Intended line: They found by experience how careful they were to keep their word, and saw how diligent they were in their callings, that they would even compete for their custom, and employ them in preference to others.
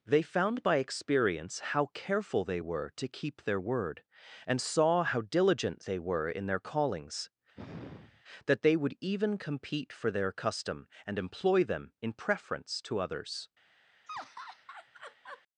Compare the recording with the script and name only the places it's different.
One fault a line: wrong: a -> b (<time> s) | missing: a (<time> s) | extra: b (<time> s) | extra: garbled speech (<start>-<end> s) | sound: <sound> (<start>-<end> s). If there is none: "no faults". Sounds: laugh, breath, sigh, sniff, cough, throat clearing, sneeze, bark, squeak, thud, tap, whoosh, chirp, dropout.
sound: sigh (7.5-8.2 s)
sound: laugh (14.1-15.4 s)